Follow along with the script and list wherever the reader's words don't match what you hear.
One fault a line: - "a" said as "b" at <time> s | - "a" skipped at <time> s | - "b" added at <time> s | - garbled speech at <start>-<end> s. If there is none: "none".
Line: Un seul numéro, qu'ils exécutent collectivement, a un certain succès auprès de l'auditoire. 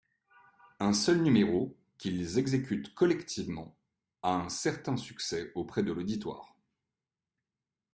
none